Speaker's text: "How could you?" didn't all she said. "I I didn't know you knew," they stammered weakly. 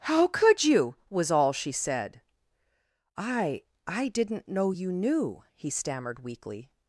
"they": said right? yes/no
no